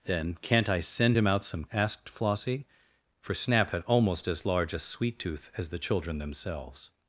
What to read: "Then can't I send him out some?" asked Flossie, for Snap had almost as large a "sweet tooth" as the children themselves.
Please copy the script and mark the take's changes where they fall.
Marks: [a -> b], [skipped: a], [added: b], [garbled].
"Then can't I send him out some?" asked Flossie, for Snap had almost as large a "sweet tooth" as the children themselves.